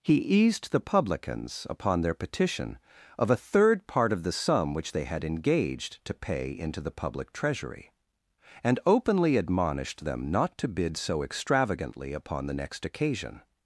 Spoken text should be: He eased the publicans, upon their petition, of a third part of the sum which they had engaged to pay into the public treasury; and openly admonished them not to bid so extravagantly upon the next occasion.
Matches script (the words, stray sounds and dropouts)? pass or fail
pass